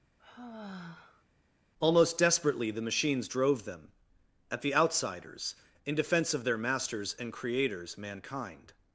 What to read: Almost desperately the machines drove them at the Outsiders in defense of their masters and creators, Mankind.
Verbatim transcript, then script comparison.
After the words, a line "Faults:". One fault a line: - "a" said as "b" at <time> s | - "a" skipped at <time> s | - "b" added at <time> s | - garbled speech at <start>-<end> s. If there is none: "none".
Almost desperately the machines drove them at the Outsiders in defense of their masters and creators, Mankind.
Faults:
none